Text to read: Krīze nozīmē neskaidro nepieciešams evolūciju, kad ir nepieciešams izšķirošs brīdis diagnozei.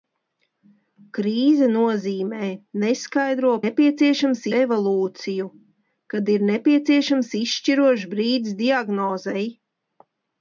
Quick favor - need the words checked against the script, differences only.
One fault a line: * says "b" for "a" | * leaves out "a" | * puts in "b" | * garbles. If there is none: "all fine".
all fine